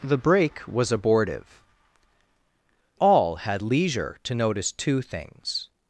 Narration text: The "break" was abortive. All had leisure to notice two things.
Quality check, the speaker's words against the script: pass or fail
pass